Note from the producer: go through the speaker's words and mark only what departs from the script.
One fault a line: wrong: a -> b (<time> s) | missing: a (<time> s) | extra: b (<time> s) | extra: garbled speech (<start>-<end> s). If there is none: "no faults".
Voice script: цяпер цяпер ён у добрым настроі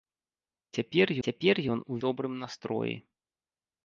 no faults